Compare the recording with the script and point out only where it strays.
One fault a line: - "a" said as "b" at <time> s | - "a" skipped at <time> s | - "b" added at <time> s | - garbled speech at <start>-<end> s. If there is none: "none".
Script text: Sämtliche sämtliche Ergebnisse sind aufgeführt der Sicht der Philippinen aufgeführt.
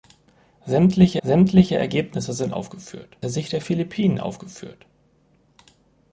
none